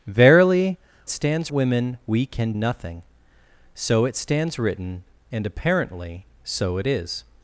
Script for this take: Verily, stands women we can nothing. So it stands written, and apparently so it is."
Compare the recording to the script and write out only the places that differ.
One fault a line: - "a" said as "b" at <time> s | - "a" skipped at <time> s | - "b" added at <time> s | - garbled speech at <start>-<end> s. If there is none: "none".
none